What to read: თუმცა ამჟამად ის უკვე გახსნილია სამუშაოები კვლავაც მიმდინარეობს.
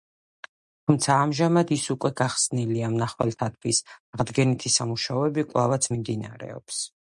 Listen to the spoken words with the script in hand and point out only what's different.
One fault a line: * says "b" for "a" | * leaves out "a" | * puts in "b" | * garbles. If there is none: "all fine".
* puts in "მნახველთათვის აღდგენითი"